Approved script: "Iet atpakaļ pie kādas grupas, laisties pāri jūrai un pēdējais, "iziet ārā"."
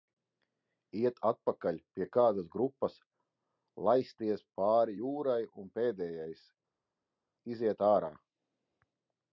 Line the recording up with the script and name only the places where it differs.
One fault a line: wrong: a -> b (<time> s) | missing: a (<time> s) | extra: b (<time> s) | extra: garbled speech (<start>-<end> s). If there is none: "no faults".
no faults